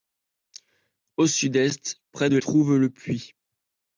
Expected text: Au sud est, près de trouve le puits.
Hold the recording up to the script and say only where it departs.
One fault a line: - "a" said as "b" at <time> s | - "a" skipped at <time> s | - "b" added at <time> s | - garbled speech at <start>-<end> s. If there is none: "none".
none